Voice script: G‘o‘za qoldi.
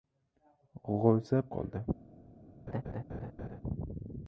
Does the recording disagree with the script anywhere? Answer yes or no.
no